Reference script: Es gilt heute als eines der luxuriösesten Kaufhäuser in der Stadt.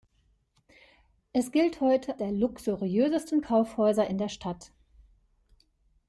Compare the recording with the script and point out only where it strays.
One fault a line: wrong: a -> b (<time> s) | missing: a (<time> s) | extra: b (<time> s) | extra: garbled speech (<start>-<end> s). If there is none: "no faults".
missing: als eines (2.2 s)